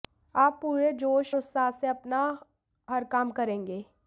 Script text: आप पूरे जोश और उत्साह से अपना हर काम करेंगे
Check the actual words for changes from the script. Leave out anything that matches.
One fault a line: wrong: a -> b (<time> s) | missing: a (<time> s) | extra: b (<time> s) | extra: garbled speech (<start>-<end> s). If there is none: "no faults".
missing: और (1.4 s)